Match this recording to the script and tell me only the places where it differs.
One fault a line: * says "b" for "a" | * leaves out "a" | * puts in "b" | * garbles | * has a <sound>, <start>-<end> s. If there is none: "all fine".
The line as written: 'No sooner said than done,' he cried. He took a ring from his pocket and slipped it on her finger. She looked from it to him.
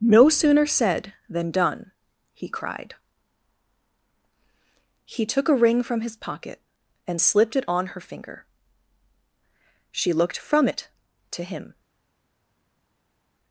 all fine